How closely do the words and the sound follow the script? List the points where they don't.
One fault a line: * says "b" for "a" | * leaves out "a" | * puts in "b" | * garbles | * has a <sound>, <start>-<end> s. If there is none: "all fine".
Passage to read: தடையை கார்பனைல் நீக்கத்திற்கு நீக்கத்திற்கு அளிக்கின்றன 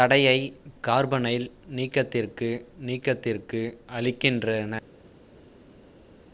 all fine